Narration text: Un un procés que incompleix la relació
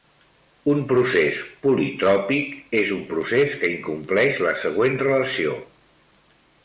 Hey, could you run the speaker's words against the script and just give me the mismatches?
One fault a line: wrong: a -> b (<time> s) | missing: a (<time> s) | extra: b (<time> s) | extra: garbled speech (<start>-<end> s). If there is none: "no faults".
extra: procés politròpic és (0.9 s)
extra: següent (4.6 s)